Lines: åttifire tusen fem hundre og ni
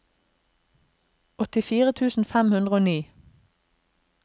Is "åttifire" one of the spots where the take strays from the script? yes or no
no